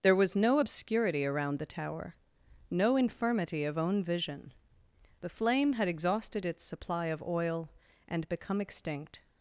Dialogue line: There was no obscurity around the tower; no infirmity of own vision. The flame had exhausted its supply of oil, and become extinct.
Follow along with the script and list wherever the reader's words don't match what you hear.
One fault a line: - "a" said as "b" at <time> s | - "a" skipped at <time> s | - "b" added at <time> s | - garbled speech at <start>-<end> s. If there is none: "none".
none